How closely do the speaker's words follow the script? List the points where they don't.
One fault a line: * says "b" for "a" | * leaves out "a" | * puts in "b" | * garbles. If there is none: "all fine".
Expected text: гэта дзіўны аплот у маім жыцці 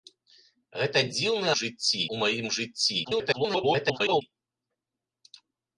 * says "жыцці" for "аплот"
* garbles